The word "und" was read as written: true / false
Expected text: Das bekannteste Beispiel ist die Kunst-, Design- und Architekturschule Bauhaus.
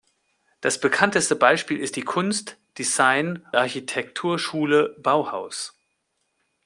false